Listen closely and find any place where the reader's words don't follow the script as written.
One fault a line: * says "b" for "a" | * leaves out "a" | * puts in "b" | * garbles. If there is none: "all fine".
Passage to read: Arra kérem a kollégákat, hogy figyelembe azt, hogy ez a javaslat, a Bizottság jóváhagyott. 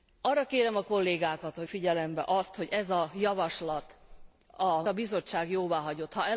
all fine